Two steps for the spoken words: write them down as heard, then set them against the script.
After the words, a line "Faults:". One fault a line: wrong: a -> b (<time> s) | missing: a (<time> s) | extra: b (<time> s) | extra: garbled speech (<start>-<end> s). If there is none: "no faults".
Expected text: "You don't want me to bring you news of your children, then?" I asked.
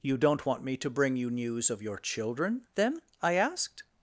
"You don't want me to bring you news of your children, then?" I asked.
Faults:
no faults